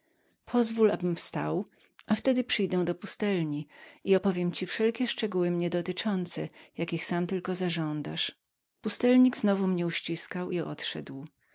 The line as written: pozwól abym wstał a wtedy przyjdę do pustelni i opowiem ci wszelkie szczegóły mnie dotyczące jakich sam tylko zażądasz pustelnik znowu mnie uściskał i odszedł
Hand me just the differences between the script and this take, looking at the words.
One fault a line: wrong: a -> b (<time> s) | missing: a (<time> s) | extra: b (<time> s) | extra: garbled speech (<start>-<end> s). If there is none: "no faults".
no faults